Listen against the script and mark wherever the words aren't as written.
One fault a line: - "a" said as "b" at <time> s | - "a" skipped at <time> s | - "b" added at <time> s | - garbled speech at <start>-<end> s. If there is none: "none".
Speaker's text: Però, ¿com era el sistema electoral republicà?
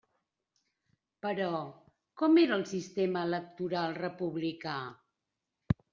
none